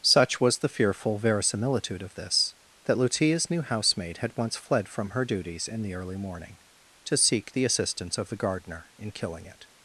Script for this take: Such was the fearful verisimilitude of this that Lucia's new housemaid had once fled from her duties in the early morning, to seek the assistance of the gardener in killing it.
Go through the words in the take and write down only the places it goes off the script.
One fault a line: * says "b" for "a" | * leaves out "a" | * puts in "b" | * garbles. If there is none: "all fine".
all fine